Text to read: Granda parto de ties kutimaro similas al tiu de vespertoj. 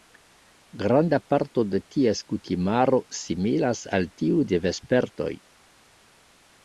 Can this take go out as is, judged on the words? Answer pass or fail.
pass